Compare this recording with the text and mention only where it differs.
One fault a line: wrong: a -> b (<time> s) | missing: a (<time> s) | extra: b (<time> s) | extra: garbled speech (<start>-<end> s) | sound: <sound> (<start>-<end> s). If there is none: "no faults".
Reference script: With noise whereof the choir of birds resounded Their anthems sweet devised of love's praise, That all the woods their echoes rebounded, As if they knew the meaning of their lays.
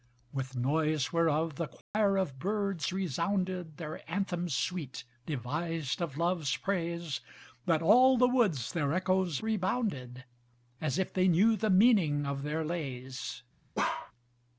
sound: dropout (1.8-1.9 s)
sound: bark (13.8-14.1 s)